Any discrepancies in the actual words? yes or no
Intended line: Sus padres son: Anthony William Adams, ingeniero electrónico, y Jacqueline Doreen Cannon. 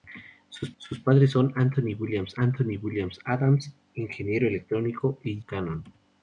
yes